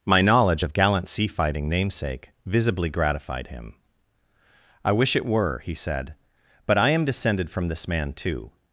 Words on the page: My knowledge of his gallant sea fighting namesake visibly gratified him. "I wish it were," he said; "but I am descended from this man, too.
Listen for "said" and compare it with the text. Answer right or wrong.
right